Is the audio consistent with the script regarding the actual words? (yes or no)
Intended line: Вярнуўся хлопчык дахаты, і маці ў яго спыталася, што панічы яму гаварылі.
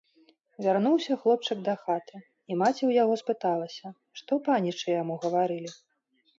yes